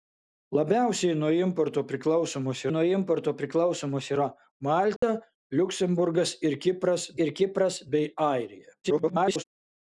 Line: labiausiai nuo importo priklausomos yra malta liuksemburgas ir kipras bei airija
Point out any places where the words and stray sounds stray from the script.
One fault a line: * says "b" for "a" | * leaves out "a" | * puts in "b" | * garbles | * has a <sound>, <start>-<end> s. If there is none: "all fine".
* puts in "nuo importo priklausomos"
* has a dropout, 5.0-5.0 s
* puts in "ir kipras"
* garbles